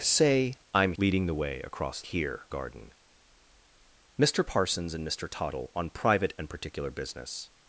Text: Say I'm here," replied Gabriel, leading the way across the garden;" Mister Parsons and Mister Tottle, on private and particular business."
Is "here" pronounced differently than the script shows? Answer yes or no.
yes